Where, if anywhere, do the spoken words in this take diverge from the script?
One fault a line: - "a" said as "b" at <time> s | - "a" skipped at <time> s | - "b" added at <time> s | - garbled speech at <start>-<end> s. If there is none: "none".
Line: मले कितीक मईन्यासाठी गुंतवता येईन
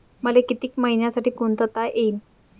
none